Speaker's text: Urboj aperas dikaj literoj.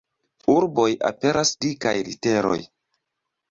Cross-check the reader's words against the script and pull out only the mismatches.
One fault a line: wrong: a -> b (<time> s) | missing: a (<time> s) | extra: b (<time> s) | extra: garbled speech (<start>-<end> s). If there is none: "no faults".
no faults